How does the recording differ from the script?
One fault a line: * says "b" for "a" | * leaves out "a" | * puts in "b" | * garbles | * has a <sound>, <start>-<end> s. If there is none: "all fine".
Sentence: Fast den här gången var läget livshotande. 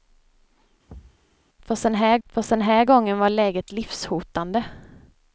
* has a thud, 0.9-1.3 s
* puts in "fast den här"